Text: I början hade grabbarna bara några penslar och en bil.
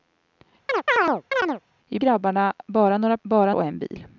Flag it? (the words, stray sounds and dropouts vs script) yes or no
yes